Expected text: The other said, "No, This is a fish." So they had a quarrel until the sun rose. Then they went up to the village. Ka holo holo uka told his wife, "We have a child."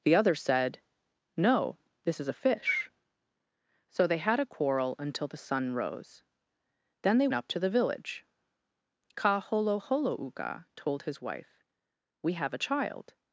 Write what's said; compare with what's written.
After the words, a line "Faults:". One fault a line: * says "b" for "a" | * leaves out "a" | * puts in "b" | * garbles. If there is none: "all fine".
The other said, "No, This is a fish." So they had a quarrel until the sun rose. Then they up to the village. Ka holo holo uka told his wife, "We have a child."
Faults:
* leaves out "went"